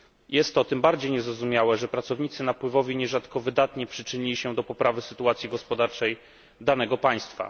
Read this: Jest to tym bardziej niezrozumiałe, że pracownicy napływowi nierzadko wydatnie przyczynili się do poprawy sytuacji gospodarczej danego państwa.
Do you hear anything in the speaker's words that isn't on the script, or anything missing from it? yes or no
no